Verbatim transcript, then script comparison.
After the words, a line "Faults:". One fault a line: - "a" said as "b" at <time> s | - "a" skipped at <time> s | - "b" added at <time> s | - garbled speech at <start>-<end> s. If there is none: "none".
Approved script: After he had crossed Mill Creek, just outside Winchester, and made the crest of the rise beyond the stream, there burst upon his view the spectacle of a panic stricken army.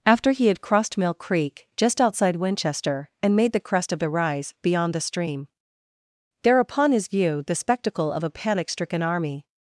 After he had crossed Mill Creek, just outside Winchester, and made the crest of the rise beyond the stream, there upon his view the spectacle of a panic stricken army.
Faults:
- "burst" skipped at 6.6 s